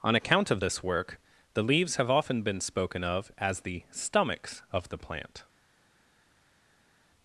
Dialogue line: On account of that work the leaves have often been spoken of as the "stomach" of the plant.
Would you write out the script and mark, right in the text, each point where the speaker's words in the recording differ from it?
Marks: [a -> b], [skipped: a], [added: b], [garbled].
On account of [that -> this] work the leaves have often been spoken of as the ["stomach" -> stomachs] of the plant.